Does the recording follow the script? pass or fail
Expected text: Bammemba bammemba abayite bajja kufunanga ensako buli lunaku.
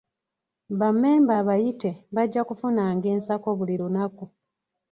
fail